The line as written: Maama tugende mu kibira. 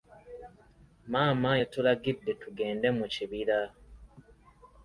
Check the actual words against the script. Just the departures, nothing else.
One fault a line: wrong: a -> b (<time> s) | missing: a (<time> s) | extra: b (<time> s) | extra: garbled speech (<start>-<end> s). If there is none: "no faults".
extra: yatulagidde (1.6 s)